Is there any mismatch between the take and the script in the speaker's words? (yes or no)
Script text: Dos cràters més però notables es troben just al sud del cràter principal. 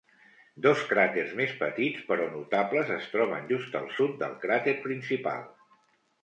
yes